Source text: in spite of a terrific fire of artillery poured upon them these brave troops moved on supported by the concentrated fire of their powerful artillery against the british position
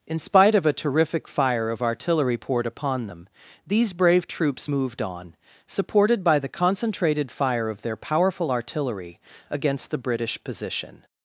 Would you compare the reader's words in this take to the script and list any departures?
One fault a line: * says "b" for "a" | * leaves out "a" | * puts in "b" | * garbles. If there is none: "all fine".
all fine